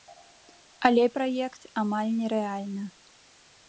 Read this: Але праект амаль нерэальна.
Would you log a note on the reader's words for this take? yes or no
no